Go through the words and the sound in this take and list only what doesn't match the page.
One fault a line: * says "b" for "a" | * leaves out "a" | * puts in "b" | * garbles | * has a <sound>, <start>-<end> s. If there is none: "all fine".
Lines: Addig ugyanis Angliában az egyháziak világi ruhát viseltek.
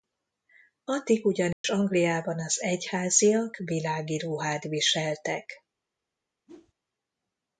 * has a dropout, 1.5-1.6 s
* has a whoosh, 6.5-6.7 s